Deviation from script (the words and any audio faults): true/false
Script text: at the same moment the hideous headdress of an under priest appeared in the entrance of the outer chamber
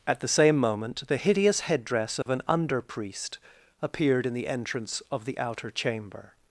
true